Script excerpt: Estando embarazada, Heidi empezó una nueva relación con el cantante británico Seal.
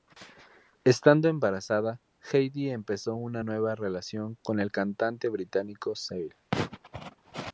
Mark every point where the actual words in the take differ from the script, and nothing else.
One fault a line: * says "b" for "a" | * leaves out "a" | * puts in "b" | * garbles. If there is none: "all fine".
all fine